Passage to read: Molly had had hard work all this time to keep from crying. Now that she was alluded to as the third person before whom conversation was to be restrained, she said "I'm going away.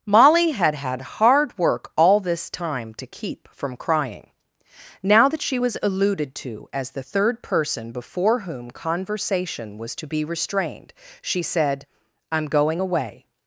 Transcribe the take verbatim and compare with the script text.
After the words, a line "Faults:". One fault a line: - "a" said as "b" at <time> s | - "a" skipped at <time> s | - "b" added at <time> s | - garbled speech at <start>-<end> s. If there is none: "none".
Molly had had hard work all this time to keep from crying. Now that she was alluded to as the third person before whom conversation was to be restrained, she said "I'm going away.
Faults:
none